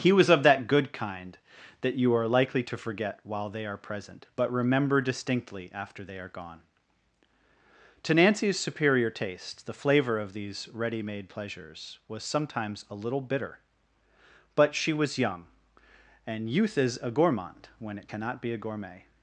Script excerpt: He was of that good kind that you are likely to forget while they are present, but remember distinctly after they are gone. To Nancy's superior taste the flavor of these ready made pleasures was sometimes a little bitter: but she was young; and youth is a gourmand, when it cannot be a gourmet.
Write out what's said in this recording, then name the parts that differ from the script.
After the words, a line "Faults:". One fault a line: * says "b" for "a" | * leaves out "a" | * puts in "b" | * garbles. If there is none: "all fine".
He was of that good kind that you are likely to forget while they are present, but remember distinctly after they are gone. To Nancy's superior taste the flavor of these ready made pleasures was sometimes a little bitter: but she was young; and youth is a gourmand, when it cannot be a gourmet.
Faults:
all fine